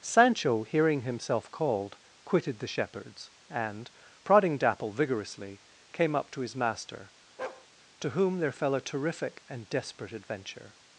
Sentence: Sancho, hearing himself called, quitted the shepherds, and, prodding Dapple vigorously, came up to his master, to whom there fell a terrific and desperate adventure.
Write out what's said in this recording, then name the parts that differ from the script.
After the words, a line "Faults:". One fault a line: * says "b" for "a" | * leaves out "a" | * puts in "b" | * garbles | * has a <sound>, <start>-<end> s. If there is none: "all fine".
Sancho, hearing himself called, quitted the shepherds, and, prodding Dapple vigorously, came up to his master, to whom there fell a terrific and desperate adventure.
Faults:
* has a bark, 7.4-7.7 s